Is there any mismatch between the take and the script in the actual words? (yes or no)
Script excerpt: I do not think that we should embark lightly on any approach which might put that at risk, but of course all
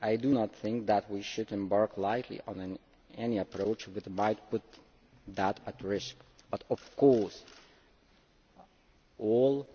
no